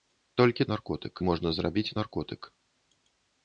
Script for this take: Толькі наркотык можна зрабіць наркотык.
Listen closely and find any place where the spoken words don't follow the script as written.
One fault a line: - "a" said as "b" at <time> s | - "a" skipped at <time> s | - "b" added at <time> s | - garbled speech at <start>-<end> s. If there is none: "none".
none